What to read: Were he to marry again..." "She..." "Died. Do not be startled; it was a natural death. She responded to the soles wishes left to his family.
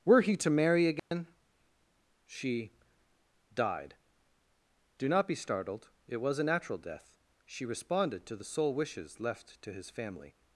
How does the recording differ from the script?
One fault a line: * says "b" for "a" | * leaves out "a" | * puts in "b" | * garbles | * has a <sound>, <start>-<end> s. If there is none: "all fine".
* has a dropout, 1.0-1.1 s
* says "sole" for "soles"